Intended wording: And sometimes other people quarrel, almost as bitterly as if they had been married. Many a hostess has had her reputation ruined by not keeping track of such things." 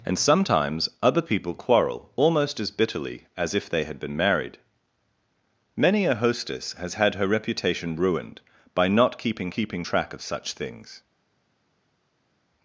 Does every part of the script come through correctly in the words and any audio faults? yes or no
no